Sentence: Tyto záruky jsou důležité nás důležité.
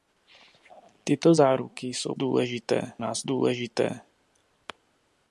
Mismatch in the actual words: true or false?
false